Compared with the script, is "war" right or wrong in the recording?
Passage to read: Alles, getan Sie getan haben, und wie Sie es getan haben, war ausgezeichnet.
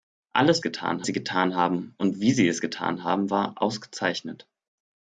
right